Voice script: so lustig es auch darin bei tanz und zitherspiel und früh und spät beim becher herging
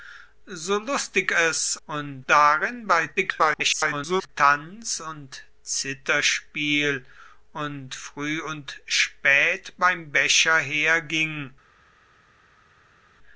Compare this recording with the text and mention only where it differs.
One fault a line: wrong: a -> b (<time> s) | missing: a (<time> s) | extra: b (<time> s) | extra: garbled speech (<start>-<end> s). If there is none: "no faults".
wrong: auch -> und (1.8 s)
extra: garbled speech (3.2-4.3 s)